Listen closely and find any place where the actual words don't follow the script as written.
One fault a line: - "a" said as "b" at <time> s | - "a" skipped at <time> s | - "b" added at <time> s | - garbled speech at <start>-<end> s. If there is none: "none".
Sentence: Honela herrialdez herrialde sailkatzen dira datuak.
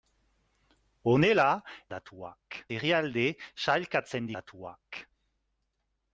- "herrialdez" said as "datuak" at 2.0 s
- "dira" skipped at 4.3 s